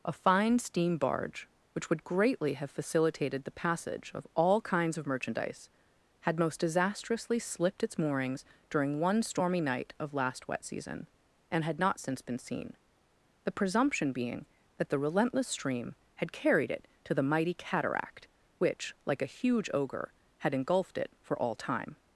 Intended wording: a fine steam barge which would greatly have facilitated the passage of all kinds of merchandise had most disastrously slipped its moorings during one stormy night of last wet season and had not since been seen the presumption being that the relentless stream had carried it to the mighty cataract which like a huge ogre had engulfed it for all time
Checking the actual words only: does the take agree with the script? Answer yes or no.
yes